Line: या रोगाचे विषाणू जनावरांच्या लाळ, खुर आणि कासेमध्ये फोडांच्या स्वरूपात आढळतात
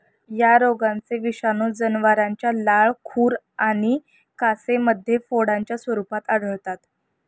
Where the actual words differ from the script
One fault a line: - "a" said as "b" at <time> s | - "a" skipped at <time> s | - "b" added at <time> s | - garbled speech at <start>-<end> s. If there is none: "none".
none